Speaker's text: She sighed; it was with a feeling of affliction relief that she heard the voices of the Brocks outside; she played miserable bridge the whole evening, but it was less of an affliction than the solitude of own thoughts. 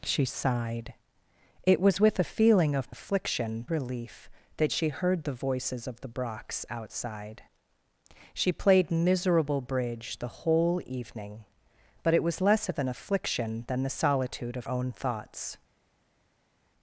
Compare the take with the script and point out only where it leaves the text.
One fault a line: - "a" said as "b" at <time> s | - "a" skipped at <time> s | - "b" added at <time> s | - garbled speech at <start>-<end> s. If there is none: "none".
none